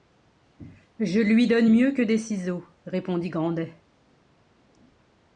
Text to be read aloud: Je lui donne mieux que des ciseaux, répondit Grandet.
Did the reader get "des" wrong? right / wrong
right